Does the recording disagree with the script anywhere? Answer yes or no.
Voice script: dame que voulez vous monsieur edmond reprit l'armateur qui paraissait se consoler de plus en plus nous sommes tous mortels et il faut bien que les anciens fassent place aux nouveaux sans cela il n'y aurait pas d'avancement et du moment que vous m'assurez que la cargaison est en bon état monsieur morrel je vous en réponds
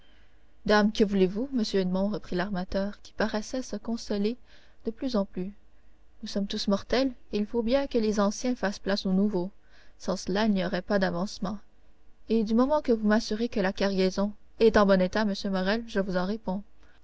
no